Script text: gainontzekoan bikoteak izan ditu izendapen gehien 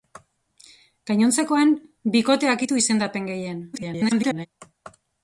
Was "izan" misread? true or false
true